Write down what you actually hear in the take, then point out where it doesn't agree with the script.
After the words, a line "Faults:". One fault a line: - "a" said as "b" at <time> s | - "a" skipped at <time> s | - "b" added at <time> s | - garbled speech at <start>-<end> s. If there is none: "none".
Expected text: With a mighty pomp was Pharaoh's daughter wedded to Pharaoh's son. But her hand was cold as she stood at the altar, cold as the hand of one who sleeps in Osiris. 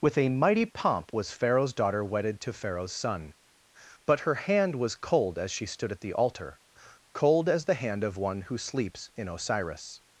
With a mighty pomp was Pharaoh's daughter wedded to Pharaoh's son. But her hand was cold as she stood at the altar, cold as the hand of one who sleeps in Osiris.
Faults:
none